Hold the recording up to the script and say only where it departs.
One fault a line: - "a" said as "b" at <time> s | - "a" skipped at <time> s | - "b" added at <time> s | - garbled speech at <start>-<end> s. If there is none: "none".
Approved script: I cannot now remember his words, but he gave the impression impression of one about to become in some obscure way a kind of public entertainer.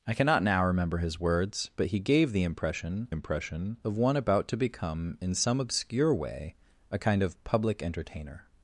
none